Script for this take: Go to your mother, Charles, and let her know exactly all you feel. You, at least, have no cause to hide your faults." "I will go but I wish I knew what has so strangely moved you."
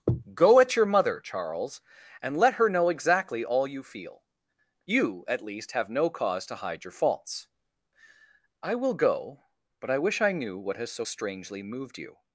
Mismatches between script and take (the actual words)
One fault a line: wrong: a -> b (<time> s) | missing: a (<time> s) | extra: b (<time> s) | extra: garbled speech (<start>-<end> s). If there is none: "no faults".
wrong: to -> at (0.6 s)